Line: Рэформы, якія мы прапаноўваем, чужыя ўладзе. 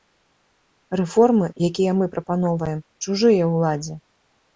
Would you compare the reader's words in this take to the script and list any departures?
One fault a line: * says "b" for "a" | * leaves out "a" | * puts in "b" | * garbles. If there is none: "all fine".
all fine